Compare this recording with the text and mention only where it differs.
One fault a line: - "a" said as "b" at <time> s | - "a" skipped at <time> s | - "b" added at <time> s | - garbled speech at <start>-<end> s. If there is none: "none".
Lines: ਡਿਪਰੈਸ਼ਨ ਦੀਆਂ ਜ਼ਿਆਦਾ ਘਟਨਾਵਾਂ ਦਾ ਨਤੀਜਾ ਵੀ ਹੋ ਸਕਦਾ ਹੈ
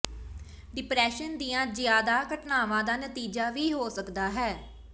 none